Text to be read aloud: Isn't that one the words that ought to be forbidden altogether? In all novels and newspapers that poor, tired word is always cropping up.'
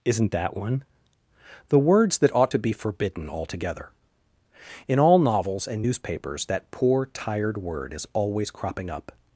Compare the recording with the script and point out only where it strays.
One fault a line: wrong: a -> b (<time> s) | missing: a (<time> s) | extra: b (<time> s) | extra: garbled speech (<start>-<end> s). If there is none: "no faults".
no faults